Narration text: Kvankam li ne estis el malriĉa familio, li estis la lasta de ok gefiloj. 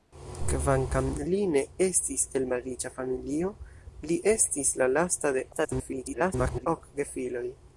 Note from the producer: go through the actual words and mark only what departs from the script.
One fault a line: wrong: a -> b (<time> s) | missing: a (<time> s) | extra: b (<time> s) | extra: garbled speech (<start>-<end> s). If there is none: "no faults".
extra: garbled speech (5.5-6.7 s)